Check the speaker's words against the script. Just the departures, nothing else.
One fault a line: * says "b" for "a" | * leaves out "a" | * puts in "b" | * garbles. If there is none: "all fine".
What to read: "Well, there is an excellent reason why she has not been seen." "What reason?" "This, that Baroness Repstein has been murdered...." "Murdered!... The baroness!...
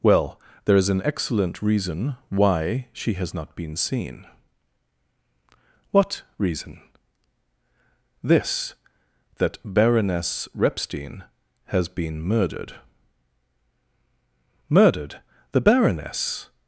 all fine